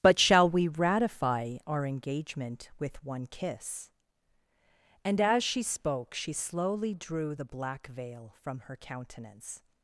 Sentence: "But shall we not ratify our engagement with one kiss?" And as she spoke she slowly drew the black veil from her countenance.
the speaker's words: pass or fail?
fail